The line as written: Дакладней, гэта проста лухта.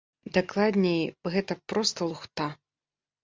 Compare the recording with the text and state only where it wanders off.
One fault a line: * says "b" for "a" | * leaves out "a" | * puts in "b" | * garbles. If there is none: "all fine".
all fine